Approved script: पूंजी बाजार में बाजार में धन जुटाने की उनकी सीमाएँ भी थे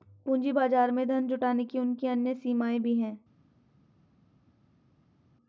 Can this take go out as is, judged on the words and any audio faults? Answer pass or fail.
fail